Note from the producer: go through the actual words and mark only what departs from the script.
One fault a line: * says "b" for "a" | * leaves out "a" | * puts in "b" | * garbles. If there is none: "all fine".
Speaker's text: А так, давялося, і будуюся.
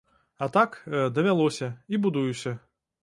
all fine